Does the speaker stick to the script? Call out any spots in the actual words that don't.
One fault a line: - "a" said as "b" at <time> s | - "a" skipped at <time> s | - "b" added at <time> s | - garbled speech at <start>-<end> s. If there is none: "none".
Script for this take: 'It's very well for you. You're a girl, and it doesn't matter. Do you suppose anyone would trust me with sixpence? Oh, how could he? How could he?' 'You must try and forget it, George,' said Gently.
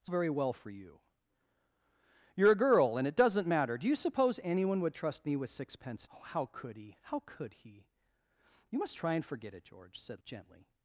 none